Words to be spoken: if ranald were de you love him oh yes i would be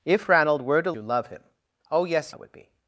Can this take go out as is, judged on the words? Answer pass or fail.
pass